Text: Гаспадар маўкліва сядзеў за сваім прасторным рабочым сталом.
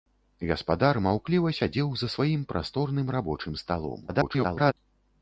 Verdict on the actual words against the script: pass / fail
fail